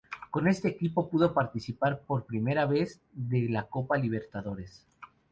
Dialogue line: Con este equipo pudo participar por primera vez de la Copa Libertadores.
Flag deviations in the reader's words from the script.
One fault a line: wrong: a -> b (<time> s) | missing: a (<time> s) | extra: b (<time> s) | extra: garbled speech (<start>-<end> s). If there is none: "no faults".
no faults